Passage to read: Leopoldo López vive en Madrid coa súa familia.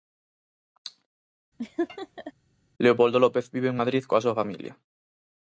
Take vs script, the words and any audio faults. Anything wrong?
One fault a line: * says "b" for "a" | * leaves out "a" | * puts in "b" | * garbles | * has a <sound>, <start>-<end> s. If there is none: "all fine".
* has a laugh, 1.6-2.3 s